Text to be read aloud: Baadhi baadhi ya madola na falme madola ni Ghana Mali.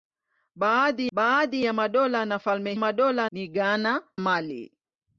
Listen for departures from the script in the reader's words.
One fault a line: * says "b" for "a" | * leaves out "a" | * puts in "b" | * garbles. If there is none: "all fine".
all fine